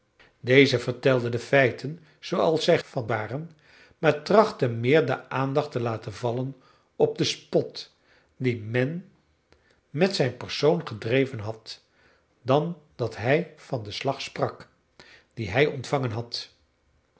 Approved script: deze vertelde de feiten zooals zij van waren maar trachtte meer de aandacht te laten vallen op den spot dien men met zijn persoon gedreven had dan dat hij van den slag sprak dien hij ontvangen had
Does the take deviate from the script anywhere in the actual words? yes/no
no